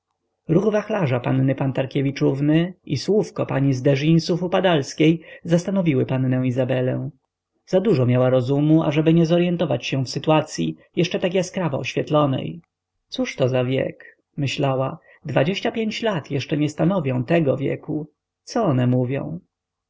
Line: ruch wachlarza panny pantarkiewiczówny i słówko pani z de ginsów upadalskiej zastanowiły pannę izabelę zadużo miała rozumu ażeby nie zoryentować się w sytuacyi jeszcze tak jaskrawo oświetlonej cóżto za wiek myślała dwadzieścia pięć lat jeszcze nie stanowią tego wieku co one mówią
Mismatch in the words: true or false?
false